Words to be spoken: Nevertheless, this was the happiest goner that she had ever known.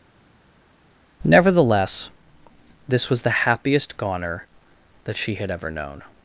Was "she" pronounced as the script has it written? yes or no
yes